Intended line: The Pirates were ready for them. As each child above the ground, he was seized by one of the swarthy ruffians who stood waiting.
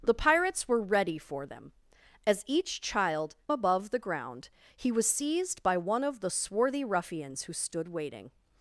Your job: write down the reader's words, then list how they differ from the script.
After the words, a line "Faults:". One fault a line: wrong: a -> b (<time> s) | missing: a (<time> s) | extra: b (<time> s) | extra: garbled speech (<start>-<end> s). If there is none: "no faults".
The Pirates were ready for them. As each child above the ground, he was seized by one of the swarthy ruffians who stood waiting.
Faults:
no faults